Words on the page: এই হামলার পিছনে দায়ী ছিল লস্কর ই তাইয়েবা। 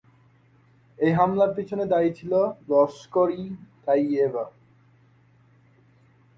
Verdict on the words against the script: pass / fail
pass